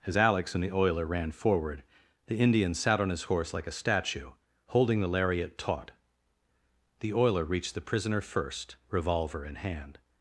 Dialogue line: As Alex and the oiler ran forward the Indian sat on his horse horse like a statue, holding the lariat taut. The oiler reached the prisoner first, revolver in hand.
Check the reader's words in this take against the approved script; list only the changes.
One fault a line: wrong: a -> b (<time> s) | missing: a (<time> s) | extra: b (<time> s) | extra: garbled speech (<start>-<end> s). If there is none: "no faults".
missing: horse (3.5 s)